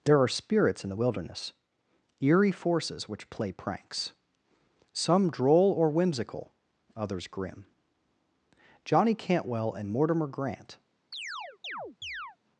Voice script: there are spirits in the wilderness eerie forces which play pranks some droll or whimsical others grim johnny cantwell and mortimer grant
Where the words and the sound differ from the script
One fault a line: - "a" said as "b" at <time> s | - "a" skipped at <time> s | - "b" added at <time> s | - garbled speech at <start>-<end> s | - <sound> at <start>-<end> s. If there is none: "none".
- chirp at 11.1-12.4 s